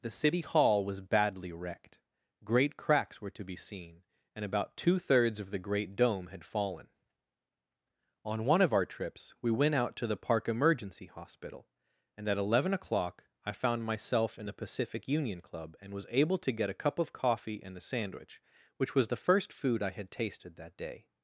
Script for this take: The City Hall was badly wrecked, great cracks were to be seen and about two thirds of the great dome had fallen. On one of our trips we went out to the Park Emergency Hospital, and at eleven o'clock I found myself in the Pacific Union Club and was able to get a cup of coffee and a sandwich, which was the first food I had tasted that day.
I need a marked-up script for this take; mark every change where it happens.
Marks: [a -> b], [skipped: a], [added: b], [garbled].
The City Hall was badly wrecked, great cracks were to be seen and about two thirds of the great dome had fallen. On one of our trips we went out to the Park Emergency Hospital, and at eleven o'clock I found myself in the Pacific Union Club and was able to get a cup of coffee and a sandwich, which was the first food I had tasted that day.